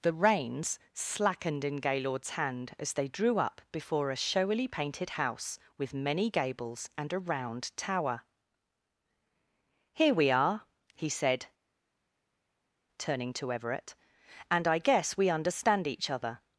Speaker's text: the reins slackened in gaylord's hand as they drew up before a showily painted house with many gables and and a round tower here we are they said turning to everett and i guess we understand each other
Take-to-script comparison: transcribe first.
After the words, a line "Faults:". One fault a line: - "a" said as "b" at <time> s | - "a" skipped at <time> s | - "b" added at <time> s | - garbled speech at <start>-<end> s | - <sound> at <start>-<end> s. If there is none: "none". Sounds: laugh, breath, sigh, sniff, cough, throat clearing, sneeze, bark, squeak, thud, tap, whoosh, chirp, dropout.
the reins slackened in gaylord's hand as they drew up before a showily painted house with many gables and a round tower here we are he said turning to everett and i guess we understand each other
Faults:
- "and" skipped at 7.1 s
- "they" said as "he" at 10.9 s